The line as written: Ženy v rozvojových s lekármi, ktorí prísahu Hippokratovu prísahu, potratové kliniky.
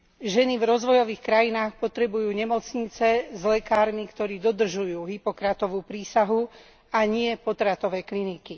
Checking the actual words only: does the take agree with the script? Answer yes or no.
no